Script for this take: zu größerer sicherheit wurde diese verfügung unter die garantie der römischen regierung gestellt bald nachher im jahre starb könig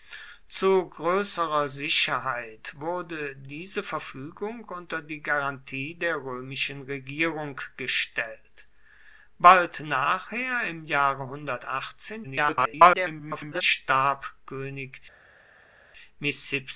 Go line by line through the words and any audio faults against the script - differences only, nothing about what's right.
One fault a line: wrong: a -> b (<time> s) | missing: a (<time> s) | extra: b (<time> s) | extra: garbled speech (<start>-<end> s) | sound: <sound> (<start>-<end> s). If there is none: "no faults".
extra: garbled speech (12.2-13.6 s)